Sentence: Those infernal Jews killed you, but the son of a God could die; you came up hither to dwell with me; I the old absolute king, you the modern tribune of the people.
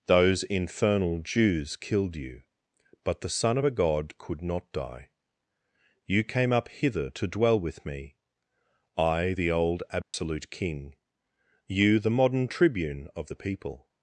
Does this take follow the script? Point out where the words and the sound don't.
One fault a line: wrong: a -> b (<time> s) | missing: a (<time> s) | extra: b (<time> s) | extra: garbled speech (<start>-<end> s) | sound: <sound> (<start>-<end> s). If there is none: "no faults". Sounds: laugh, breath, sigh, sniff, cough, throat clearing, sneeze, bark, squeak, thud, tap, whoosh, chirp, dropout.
extra: not (4.4 s)
sound: dropout (10.0-10.1 s)